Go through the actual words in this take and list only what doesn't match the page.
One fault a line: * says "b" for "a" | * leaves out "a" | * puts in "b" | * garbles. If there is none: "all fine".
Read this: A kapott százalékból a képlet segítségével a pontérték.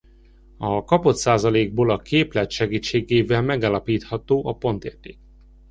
* puts in "megállapítható"